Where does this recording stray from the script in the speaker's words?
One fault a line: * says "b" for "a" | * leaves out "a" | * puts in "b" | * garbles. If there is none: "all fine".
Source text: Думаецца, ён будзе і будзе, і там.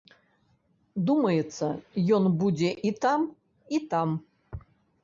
* says "там" for "будзе"